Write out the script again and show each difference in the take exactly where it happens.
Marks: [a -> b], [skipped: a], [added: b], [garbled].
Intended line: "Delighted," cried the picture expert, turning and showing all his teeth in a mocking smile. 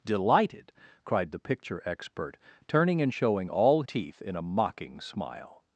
"Delighted," cried the picture expert, turning and showing all [skipped: his] teeth in a mocking smile.